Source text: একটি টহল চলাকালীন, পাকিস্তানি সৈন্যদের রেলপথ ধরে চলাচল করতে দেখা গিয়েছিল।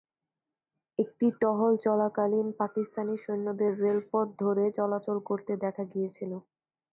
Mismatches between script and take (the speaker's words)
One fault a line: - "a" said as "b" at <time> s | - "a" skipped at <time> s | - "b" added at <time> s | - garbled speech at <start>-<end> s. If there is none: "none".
none